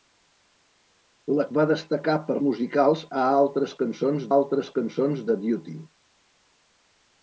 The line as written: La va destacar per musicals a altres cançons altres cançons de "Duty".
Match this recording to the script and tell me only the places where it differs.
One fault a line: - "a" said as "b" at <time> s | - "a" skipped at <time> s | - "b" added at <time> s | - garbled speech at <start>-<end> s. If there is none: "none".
none